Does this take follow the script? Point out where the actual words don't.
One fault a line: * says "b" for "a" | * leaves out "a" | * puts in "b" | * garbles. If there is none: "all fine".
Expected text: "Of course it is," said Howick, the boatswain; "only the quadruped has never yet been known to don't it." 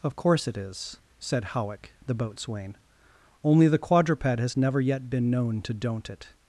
all fine